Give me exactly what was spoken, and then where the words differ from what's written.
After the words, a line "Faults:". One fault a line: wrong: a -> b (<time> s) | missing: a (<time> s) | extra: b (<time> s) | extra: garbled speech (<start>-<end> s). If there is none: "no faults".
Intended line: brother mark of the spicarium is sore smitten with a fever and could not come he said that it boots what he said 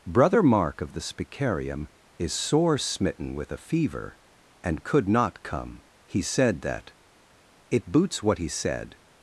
brother mark of the spicarium is sore smitten with a fever and could not come he said that it boots what he said
Faults:
no faults